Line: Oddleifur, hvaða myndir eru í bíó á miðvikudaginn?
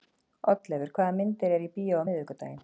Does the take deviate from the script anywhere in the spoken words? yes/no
no